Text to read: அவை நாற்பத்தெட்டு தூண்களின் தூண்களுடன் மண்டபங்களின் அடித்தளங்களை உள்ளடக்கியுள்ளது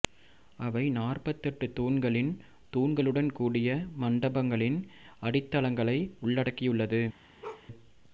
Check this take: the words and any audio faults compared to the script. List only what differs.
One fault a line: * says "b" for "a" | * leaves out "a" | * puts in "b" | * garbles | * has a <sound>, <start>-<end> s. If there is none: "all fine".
* puts in "கூடிய"
* has a bark, 7.4-7.7 s